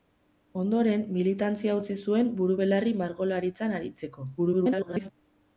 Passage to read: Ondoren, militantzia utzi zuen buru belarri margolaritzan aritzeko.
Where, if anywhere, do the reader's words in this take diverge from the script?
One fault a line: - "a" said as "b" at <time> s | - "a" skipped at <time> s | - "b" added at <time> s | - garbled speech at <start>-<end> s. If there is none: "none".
- garbled speech at 4.4-5.1 s